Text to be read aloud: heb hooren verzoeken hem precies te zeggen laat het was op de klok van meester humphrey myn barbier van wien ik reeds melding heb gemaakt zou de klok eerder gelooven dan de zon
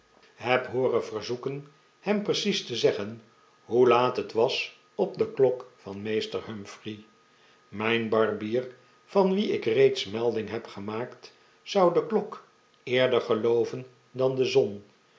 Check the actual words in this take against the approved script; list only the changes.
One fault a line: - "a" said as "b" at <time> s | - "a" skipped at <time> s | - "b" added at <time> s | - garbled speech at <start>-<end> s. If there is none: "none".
- "hoe" added at 3.6 s